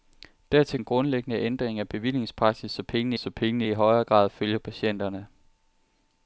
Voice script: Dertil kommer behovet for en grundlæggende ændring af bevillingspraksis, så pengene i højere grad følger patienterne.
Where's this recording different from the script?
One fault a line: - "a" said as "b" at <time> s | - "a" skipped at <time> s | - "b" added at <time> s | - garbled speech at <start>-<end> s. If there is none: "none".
- "kommer behovet for" skipped at 0.8 s
- "så pengene" added at 3.2 s